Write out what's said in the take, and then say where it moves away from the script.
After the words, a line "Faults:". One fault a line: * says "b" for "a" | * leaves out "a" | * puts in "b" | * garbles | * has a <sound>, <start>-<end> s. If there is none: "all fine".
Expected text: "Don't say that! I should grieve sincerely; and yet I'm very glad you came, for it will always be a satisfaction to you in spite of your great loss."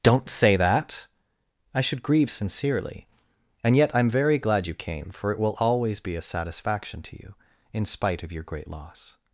"Don't say that! I should grieve sincerely; and yet I'm very glad you came, for it will always be a satisfaction to you in spite of your great loss."
Faults:
all fine